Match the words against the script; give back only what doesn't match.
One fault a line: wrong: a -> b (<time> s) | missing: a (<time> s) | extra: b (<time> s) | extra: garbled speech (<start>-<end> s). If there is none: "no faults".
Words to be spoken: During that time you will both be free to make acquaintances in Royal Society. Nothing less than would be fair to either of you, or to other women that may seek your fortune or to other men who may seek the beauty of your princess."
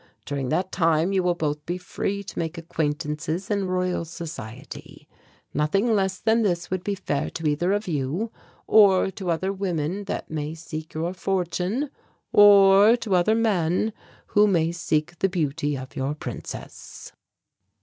extra: this (6.4 s)